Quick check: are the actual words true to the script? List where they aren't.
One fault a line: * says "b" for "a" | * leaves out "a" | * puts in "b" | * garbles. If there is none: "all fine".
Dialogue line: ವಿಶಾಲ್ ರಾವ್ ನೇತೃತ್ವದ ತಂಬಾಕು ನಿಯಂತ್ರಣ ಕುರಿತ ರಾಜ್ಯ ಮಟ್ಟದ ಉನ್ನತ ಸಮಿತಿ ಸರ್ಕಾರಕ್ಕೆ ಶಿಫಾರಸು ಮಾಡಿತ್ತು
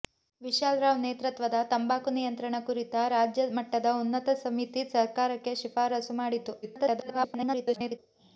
* garbles